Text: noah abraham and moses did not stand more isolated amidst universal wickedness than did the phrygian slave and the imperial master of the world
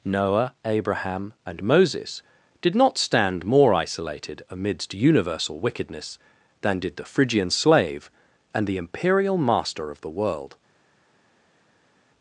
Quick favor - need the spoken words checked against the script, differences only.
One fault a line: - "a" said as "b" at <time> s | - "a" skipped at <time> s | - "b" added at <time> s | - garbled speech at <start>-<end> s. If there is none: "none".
none